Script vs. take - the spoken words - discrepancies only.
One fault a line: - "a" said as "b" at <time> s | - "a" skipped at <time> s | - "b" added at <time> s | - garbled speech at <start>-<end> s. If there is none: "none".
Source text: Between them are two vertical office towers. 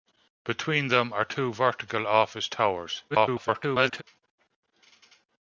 - garbled speech at 3.1-4.0 s